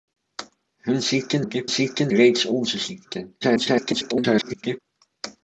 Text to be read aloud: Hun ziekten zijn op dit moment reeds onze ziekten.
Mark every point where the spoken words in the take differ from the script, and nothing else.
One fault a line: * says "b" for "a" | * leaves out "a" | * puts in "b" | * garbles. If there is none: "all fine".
* leaves out "zijn"
* says "ziekten" for "moment"
* garbles